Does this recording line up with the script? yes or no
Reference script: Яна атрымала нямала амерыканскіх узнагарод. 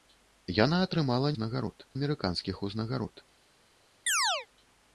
no